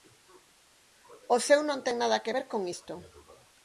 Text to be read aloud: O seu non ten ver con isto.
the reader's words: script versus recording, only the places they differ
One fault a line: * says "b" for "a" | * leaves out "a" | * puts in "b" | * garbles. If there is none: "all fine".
* puts in "nada que"